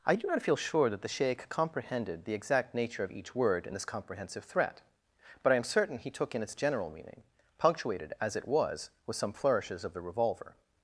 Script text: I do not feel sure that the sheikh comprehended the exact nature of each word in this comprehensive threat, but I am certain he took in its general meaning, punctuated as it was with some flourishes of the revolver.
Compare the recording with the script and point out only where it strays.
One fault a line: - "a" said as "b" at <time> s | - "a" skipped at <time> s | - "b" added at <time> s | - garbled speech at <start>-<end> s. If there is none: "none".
none